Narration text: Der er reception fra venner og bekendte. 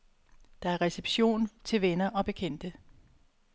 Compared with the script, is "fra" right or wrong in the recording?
wrong